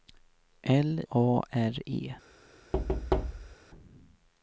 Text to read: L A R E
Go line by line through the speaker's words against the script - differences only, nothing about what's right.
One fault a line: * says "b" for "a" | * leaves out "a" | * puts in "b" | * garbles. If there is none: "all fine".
all fine